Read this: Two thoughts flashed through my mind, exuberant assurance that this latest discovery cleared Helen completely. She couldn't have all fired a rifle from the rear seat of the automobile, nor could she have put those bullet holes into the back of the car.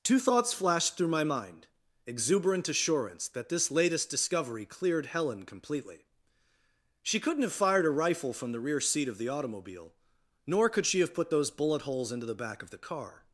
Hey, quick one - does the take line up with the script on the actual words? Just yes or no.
no